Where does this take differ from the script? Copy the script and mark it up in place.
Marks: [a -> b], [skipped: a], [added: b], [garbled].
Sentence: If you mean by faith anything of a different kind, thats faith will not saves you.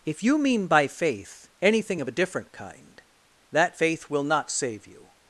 If you mean by faith anything of a different kind, [thats -> that] faith will not [saves -> save] you.